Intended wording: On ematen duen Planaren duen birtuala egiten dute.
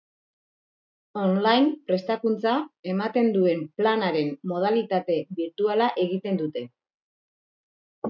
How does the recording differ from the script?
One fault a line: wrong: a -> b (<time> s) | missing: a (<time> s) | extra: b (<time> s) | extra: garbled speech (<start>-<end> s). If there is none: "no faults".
extra: line Prestakuntza (1.5 s)
wrong: duen -> modalitate (4.5 s)